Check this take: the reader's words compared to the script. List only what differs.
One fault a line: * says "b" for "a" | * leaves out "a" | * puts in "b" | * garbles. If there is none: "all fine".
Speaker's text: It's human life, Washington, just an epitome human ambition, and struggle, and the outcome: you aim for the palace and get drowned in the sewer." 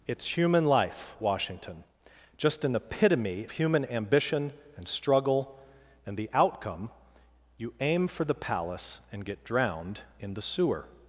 all fine